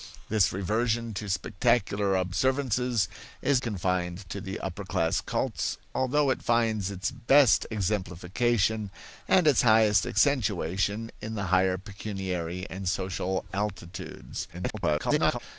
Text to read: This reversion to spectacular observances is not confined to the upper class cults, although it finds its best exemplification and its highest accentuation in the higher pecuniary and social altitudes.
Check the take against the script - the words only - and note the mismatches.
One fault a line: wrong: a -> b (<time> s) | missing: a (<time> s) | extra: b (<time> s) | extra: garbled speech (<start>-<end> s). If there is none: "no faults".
missing: not (3.6 s)
extra: garbled speech (14.5-15.4 s)